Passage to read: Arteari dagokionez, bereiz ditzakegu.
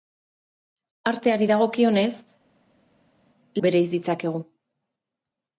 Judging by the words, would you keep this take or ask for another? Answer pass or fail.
pass